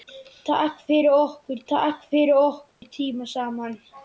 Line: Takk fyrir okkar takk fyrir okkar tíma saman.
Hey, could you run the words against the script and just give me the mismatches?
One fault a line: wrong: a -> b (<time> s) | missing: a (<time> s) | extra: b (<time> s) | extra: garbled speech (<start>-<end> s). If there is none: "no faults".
no faults